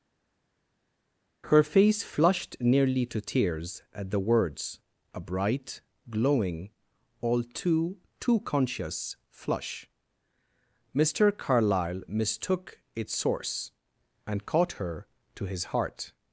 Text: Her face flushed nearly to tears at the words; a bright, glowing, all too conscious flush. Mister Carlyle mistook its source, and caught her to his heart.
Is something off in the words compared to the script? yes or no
yes